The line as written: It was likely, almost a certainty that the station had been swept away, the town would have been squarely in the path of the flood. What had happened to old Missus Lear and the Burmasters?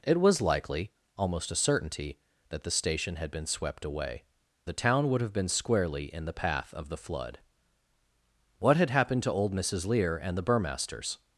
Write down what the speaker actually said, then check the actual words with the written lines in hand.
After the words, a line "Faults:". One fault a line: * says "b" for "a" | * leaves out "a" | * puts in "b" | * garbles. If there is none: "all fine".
It was likely, almost a certainty that the station had been swept away, the town would have been squarely in the path of the flood. What had happened to old Missus Lear and the Burmasters?
Faults:
all fine